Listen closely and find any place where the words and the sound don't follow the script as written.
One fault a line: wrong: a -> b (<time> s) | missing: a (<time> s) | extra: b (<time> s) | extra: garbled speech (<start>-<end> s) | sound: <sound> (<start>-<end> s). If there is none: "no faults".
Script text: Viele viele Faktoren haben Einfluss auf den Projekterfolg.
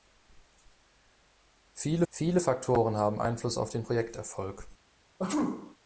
sound: sneeze (5.2-5.8 s)